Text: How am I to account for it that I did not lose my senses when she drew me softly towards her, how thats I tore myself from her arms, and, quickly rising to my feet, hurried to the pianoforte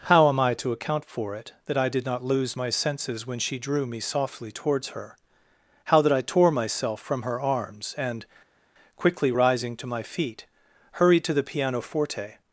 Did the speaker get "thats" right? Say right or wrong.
wrong